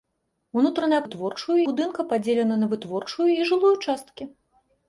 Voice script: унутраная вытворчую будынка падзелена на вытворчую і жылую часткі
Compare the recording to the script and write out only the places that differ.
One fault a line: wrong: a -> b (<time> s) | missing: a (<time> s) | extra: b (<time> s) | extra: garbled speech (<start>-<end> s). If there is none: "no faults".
no faults